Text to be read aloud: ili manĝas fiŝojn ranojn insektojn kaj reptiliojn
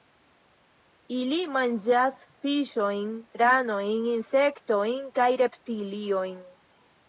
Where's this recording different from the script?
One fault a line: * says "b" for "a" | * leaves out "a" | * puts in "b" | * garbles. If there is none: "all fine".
all fine